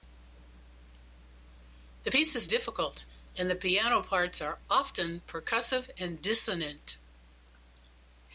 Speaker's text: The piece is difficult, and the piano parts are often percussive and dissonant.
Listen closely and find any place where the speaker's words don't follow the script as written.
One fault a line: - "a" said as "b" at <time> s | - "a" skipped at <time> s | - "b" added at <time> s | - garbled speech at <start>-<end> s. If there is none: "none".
none